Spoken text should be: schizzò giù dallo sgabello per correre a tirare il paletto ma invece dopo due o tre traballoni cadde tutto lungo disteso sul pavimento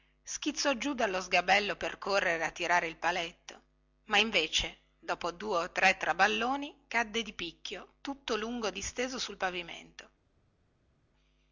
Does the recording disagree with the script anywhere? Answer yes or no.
yes